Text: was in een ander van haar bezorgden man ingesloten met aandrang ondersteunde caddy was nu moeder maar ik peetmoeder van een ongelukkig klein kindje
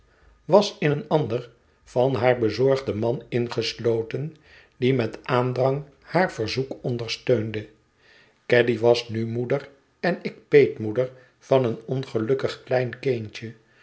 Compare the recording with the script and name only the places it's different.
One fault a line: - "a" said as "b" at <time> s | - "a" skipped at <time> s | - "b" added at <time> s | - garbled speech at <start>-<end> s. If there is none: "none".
- "die" added at 4.8 s
- "haar verzoek" added at 6.0 s
- "maar" said as "en" at 10.0 s